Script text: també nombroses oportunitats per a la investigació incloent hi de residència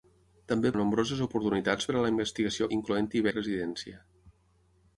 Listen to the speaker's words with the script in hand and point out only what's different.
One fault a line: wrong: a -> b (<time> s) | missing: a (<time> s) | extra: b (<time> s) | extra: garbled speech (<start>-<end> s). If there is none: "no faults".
no faults